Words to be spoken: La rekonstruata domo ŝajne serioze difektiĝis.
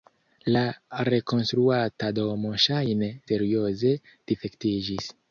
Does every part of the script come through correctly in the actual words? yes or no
yes